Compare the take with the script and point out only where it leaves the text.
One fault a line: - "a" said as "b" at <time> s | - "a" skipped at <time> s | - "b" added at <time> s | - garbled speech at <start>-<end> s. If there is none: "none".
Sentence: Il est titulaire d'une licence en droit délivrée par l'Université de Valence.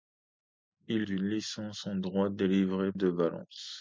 - "est titulaire" skipped at 1.1 s
- "par l'Université" skipped at 2.9 s